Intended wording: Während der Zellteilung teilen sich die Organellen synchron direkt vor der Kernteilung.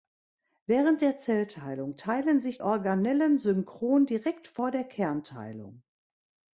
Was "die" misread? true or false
true